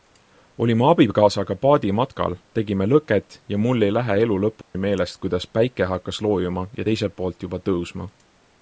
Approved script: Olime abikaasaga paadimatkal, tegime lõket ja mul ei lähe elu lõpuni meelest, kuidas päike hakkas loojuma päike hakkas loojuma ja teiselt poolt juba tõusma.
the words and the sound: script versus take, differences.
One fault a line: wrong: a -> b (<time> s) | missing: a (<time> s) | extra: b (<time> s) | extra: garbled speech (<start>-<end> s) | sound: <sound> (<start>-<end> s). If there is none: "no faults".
sound: dropout (4.6-4.7 s)
missing: päike hakkas loojuma (6.7 s)